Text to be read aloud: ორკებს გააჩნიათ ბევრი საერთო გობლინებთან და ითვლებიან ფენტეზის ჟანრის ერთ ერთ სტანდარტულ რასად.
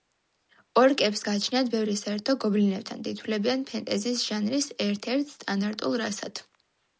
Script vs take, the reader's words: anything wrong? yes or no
no